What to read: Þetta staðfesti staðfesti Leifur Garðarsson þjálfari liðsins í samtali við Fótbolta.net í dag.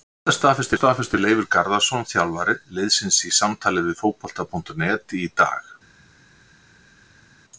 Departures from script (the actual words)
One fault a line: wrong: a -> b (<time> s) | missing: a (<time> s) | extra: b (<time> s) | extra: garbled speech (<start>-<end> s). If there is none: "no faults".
no faults